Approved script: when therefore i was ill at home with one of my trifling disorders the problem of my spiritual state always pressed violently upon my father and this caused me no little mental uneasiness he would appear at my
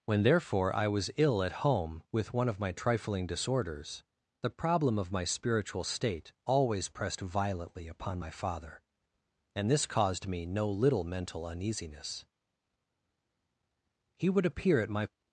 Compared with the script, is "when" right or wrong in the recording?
right